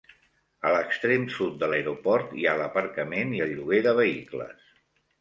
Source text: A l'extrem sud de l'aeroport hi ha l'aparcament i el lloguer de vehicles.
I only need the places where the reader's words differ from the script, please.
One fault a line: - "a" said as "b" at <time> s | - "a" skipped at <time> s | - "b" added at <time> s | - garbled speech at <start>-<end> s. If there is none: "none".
none